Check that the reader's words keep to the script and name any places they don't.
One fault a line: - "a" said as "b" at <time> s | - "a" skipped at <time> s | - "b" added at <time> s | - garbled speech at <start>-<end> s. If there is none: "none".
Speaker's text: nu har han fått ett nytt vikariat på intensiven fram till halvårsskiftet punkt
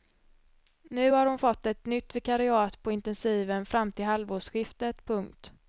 - "han" said as "hon" at 1.2 s